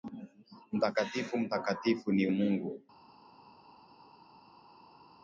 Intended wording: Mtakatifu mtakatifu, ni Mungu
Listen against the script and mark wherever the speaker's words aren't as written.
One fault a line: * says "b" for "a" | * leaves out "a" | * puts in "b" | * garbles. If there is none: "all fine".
all fine